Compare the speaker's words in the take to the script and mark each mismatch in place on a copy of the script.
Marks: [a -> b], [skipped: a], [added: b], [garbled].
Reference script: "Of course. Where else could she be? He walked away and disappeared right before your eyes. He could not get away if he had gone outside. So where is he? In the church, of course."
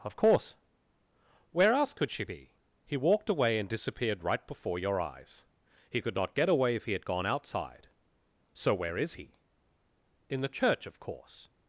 "Of course. Where else could she be? He walked away and disappeared right before your eyes. He could not get away if he had gone outside. So where is he? In the church, of course."